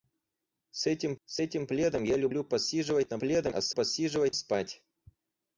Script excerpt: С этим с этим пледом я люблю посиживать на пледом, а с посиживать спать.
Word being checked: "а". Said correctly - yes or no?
yes